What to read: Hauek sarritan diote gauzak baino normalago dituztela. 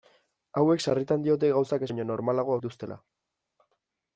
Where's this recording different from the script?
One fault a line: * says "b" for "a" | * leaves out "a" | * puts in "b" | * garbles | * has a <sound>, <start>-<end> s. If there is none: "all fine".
all fine